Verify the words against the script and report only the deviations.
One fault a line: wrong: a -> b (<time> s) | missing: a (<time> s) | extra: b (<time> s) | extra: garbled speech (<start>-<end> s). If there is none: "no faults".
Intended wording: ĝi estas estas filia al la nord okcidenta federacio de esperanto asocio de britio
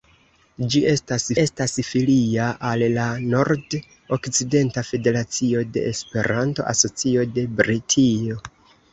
no faults